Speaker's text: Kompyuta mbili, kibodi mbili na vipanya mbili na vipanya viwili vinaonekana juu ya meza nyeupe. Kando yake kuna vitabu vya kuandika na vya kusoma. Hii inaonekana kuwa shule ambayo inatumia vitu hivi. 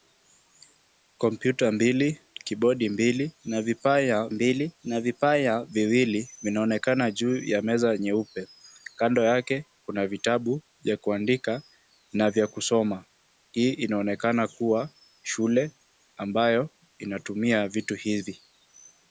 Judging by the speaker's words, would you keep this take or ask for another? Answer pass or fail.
pass